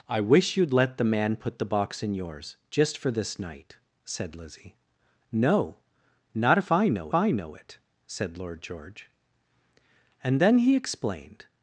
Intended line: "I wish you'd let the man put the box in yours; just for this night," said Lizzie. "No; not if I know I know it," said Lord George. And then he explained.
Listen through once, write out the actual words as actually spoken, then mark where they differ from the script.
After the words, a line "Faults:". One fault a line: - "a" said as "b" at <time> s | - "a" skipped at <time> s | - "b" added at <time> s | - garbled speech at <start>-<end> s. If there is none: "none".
"I wish you'd let the man put the box in yours; just for this night," said Lizzie. "No; not if I know I know it," said Lord George. And then he explained.
Faults:
none